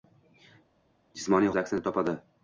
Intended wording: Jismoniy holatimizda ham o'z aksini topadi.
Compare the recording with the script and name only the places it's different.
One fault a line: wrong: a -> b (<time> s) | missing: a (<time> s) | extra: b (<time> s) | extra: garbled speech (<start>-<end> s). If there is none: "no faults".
missing: holatimizda ham (1.5 s)